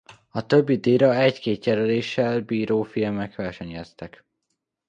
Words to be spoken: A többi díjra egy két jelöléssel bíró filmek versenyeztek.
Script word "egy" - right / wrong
right